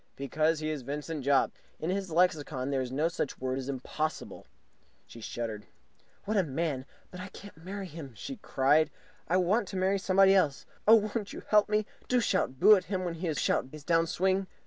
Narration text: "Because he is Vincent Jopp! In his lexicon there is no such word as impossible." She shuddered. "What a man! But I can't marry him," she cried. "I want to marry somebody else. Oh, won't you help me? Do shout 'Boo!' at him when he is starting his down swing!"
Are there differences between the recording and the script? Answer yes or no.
yes